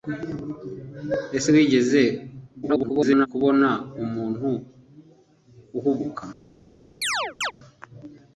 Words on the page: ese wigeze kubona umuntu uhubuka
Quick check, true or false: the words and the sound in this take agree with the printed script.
false